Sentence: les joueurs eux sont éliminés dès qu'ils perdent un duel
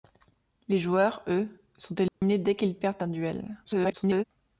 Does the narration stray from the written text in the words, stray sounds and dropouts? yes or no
yes